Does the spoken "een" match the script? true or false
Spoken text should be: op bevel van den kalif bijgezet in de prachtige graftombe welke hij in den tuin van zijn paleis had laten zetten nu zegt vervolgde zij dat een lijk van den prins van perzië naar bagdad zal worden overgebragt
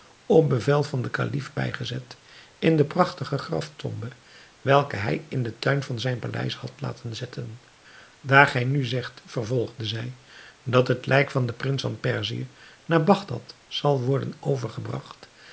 false